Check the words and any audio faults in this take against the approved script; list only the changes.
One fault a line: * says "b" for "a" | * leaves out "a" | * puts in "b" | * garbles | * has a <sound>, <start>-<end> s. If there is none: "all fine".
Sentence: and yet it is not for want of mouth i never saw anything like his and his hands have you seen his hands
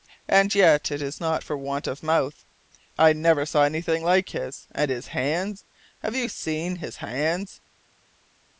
all fine